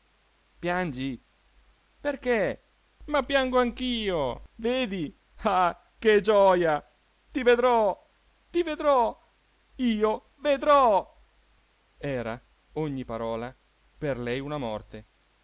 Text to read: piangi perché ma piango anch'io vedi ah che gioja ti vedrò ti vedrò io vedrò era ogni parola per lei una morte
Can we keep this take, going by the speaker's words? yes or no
yes